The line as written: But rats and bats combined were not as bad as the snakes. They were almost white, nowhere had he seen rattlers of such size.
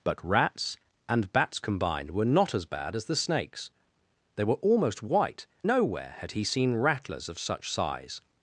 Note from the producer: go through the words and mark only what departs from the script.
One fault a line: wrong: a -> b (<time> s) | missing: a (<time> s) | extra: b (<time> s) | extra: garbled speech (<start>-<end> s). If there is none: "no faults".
no faults